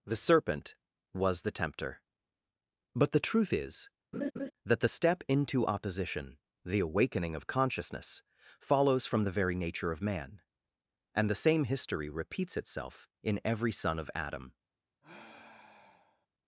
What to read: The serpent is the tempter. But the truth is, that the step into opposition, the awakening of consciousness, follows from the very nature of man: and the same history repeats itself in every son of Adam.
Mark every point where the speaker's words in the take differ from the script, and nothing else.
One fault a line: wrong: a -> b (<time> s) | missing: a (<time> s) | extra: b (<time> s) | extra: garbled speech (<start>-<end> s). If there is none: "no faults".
wrong: is -> was (1.1 s)